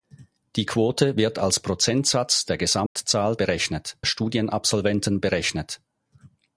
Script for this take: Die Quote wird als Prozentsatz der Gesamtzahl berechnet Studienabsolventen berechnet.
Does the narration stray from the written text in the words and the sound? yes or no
yes